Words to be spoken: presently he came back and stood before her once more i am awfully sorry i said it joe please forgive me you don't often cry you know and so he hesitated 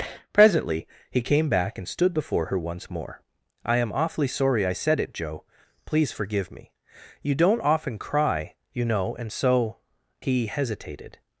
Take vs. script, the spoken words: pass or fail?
pass